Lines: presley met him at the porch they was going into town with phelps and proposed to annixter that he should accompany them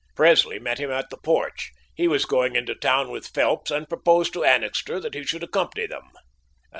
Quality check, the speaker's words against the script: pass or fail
fail